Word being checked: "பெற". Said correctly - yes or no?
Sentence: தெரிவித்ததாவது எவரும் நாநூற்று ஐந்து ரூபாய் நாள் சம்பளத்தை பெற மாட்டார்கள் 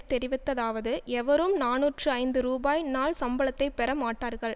yes